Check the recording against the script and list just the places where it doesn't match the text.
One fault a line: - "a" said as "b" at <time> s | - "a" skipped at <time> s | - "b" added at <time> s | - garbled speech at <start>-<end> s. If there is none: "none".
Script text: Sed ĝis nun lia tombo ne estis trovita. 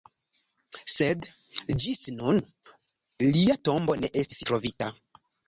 none